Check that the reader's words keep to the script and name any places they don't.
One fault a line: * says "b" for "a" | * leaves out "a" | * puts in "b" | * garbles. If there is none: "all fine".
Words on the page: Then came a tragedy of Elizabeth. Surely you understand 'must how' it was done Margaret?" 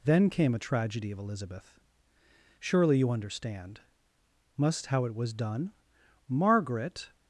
all fine